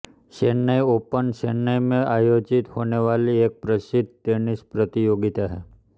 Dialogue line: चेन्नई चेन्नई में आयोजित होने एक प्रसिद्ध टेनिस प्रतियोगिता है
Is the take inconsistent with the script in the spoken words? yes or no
yes